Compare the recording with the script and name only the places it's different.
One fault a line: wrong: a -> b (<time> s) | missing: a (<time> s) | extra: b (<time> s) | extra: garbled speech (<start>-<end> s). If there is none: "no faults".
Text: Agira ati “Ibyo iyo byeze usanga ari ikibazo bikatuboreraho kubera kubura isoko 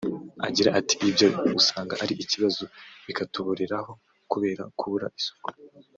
missing: iyo byeze (1.3 s)